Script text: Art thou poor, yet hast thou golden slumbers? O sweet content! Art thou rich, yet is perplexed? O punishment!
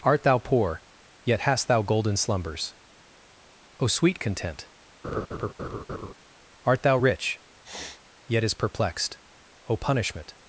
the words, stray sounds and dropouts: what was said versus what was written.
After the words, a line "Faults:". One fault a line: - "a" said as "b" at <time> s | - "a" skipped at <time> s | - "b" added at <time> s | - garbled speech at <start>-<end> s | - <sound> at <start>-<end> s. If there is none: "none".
Art thou poor, yet hast thou golden slumbers? O sweet content! Art thou rich, yet is perplexed? O punishment!
Faults:
- laugh at 5.0-6.1 s
- sniff at 7.6-8.0 s